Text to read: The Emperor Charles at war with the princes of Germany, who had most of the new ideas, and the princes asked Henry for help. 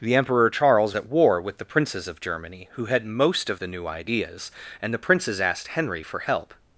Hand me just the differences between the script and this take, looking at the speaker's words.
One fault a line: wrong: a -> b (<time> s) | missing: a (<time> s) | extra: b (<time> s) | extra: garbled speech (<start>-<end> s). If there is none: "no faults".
no faults